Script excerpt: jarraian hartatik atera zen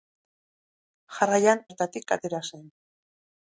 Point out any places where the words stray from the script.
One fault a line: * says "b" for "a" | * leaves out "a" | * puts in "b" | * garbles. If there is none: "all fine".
all fine